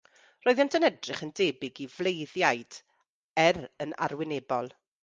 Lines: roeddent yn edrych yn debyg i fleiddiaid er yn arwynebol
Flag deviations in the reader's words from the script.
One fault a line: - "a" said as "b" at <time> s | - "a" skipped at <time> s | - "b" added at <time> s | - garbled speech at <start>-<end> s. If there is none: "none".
none